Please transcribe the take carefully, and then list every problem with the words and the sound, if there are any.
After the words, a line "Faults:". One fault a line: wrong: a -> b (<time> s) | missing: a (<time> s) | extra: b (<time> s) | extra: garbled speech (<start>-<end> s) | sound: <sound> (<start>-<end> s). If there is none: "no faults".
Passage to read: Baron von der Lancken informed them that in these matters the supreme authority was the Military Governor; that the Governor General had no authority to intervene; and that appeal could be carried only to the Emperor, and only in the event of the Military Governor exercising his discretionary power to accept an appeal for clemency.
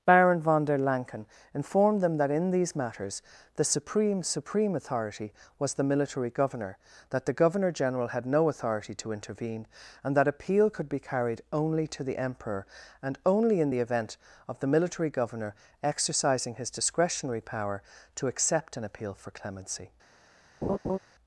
Baron von der Lancken informed them that in these matters the supreme supreme authority was the Military Governor; that the Governor General had no authority to intervene; and that appeal could be carried only to the Emperor, and only in the event of the Military Governor exercising his discretionary power to accept an appeal for clemency.
Faults:
extra: supreme (4.2 s)
sound: laugh (20.6-21.0 s)